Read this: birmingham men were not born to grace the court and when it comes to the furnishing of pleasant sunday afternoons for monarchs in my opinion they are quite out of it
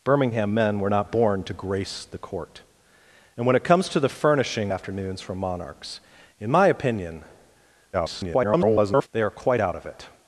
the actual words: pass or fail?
fail